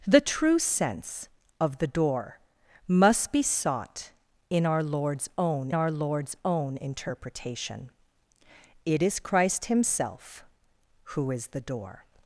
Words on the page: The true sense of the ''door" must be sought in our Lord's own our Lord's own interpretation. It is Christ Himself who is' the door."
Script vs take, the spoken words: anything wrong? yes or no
no